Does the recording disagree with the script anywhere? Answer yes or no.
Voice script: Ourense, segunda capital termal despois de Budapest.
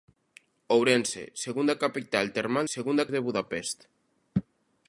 yes